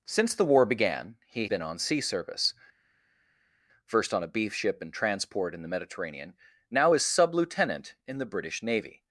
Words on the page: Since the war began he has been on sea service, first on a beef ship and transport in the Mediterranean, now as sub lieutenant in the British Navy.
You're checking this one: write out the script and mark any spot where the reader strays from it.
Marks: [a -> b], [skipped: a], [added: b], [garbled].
Since the war began he [skipped: has] been on sea service, first on a beef ship and transport in the Mediterranean, now as sub lieutenant in the British Navy.